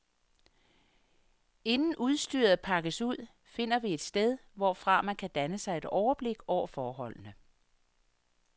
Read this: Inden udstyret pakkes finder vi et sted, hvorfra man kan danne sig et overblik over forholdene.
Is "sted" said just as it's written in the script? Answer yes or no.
yes